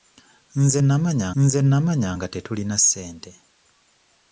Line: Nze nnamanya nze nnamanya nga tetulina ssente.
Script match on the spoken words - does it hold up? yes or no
yes